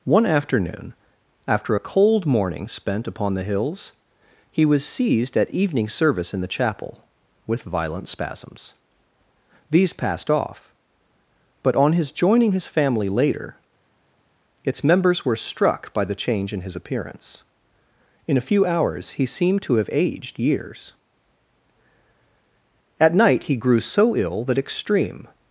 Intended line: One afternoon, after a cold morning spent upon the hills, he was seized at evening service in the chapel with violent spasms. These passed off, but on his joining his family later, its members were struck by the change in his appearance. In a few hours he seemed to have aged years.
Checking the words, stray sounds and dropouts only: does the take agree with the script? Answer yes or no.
no